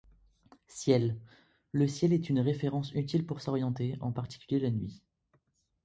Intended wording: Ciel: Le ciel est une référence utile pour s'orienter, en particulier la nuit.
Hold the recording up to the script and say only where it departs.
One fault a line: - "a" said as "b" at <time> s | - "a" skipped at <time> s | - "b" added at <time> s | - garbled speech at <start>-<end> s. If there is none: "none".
none